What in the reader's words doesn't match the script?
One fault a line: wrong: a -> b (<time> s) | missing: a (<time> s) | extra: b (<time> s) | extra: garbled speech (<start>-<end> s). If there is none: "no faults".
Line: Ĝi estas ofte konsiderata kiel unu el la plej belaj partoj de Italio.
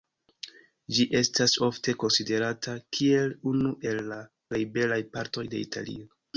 no faults